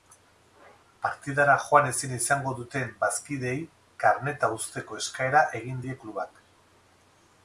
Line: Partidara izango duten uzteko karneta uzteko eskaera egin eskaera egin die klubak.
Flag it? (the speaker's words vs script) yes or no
yes